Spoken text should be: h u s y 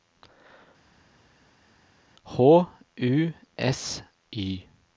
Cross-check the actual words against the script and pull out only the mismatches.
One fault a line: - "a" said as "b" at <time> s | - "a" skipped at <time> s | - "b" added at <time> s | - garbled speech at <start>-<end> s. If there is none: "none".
none